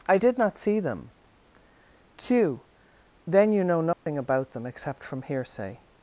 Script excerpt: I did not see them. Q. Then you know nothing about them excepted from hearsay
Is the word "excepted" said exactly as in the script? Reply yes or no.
no